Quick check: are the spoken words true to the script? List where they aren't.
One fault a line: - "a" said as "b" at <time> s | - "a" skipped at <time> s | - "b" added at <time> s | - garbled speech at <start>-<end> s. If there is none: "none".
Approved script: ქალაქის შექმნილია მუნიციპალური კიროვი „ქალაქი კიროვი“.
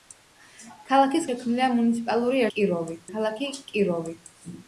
none